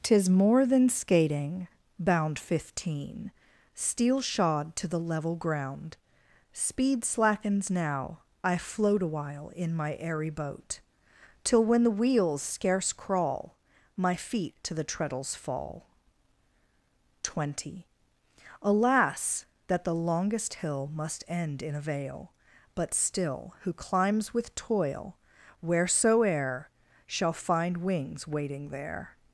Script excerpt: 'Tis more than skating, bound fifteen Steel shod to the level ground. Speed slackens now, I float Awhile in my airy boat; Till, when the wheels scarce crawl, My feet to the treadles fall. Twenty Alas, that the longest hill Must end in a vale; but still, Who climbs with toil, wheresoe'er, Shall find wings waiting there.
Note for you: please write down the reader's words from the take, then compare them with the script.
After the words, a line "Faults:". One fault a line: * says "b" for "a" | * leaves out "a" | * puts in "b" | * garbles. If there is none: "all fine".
'Tis more than skating, bound fifteen Steel shod to the level ground. Speed slackens now, I float Awhile in my airy boat; Till, when the wheels scarce crawl, My feet to the treadles fall. Twenty Alas, that the longest hill Must end in a vale; but still, Who climbs with toil, wheresoe'er, Shall find wings waiting there.
Faults:
all fine